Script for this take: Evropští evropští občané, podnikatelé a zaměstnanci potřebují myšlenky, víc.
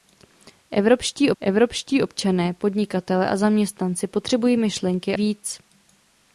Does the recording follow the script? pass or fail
pass